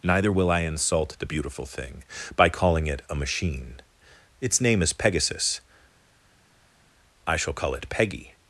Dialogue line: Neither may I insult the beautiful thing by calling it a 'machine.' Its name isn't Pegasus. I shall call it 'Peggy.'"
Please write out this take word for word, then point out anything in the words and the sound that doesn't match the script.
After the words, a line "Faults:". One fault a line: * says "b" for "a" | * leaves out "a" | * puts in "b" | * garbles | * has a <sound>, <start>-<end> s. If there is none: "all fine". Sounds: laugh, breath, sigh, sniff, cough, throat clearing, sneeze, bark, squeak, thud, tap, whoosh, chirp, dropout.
Neither will I insult the beautiful thing by calling it a 'machine.' Its name is Pegasus. I shall call it 'Peggy.'"
Faults:
* says "will" for "may"
* says "is" for "isn't"